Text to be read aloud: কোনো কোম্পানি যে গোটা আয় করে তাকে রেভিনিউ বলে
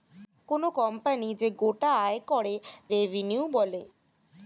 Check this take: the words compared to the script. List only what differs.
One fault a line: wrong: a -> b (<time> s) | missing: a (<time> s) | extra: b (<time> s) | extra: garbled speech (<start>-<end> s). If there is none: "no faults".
missing: তাকে (2.5 s)